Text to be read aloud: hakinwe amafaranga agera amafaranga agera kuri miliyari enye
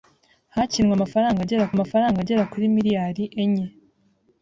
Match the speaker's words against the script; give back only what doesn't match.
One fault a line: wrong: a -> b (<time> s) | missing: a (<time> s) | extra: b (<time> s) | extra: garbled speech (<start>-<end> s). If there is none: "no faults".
no faults